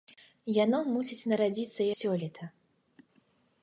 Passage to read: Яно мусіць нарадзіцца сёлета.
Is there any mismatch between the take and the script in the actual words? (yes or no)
no